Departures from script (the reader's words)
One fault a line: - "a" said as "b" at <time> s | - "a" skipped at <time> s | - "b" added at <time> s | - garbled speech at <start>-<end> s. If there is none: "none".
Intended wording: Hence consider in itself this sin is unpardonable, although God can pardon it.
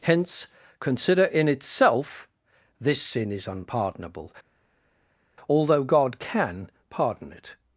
none